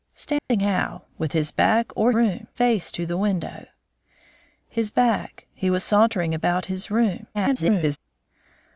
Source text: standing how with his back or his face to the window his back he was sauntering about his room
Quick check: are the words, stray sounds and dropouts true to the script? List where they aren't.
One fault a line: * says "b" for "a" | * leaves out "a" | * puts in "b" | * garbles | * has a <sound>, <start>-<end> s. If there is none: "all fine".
* has a dropout, 0.4-0.5 s
* says "room" for "his"
* garbles